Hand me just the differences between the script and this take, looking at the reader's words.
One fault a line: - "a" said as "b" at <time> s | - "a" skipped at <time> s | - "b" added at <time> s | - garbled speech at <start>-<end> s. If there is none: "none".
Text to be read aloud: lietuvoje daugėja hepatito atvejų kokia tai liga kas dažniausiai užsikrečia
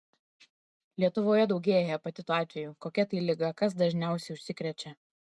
none